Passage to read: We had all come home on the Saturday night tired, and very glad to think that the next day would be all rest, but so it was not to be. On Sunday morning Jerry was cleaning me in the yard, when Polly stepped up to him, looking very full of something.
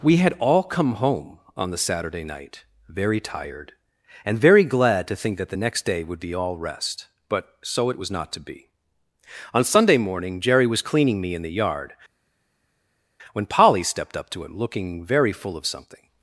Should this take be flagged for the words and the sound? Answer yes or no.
yes